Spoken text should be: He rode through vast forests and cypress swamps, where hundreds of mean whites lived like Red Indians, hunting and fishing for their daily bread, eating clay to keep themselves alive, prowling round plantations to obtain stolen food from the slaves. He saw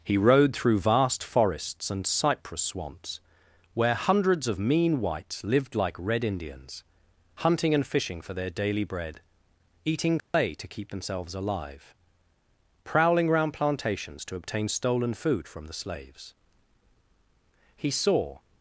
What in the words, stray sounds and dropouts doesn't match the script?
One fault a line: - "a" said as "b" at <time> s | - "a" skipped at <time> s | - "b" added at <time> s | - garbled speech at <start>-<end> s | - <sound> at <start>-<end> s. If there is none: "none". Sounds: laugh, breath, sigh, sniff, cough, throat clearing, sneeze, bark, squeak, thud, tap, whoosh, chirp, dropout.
- dropout at 10.2-10.3 s